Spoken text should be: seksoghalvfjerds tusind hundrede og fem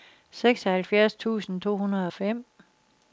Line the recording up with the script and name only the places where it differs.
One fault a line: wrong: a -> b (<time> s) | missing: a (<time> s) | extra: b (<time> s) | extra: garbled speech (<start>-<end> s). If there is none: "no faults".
extra: to (1.6 s)